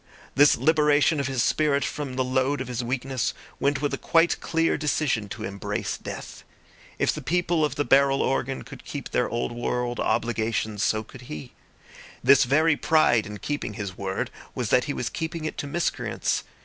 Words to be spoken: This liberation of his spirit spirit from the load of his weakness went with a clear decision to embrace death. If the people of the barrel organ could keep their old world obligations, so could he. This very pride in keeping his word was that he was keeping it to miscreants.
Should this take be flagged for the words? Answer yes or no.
yes